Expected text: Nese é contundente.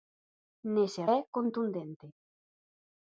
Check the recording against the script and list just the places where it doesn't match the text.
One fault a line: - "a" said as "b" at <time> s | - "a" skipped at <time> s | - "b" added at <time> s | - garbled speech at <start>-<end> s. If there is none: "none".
none